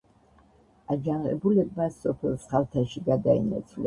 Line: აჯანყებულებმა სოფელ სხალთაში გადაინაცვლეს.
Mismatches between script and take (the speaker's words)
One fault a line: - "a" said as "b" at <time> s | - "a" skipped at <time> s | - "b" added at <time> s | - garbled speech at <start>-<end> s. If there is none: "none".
none